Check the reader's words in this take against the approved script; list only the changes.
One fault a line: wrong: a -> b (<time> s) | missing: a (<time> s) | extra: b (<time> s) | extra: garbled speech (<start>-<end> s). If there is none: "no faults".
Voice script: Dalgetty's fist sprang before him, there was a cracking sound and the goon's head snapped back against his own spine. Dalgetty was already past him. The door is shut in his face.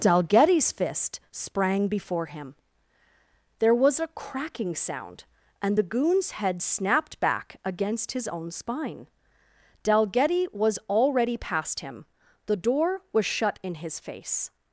wrong: is -> was (13.1 s)